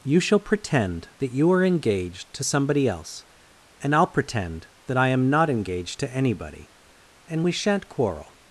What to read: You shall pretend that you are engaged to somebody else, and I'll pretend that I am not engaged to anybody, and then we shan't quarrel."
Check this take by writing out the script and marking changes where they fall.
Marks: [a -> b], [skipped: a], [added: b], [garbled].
You shall pretend that you are engaged to somebody else, and I'll pretend that I am not engaged to anybody, and [skipped: then] we shan't quarrel."